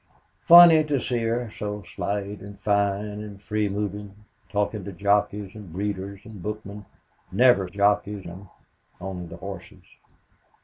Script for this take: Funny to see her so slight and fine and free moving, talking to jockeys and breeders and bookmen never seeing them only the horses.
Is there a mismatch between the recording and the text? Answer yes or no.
yes